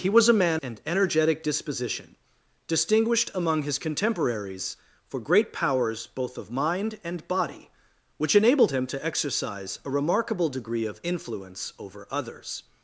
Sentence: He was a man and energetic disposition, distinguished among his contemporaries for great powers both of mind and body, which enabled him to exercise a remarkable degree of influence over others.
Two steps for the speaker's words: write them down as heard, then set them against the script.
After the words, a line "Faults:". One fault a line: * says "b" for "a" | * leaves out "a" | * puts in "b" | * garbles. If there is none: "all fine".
He was a man and energetic disposition, distinguished among his contemporaries for great powers both of mind and body, which enabled him to exercise a remarkable degree of influence over others.
Faults:
all fine